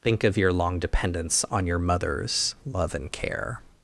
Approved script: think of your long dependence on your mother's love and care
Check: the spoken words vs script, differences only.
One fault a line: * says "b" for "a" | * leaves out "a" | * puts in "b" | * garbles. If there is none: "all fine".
all fine